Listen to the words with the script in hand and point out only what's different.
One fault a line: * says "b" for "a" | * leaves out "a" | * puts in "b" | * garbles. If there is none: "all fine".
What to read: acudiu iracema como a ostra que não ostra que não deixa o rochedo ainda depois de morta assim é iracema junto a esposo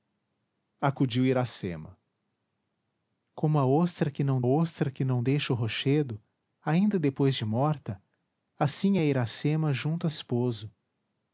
all fine